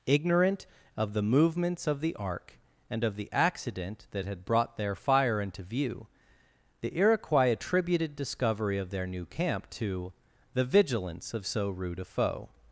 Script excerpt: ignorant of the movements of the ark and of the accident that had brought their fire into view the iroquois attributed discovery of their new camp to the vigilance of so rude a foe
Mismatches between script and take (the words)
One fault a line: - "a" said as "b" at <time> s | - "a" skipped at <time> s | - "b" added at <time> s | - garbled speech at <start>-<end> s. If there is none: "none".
none